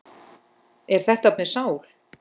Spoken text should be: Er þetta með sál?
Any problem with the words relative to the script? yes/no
no